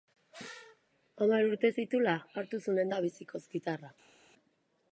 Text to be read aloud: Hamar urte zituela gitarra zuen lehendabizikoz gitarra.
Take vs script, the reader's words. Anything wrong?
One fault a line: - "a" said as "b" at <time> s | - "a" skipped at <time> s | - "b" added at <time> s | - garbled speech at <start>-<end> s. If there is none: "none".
- "gitarra" said as "hartu" at 2.4 s